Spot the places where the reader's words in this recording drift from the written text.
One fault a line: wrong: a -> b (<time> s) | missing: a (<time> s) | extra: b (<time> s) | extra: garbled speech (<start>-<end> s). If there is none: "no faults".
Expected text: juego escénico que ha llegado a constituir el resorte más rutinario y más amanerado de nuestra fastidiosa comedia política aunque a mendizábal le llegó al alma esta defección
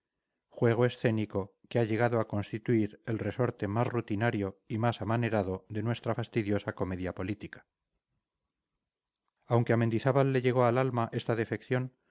no faults